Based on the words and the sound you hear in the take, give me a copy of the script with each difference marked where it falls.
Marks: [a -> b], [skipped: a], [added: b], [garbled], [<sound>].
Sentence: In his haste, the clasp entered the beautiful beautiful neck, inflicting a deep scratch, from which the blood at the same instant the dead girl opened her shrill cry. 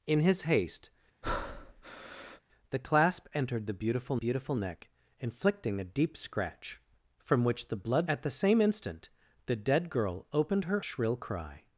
In his haste, [breath] the clasp entered the beautiful beautiful neck, inflicting a deep scratch, from which the blood at the same instant the dead girl opened her shrill cry.